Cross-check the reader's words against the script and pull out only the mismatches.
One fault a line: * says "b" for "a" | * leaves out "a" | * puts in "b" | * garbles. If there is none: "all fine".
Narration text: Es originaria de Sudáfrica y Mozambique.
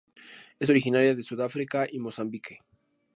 all fine